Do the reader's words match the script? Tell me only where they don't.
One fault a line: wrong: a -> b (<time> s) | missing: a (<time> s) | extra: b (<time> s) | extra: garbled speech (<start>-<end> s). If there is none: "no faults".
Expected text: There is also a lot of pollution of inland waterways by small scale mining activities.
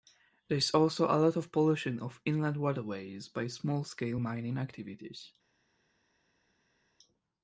no faults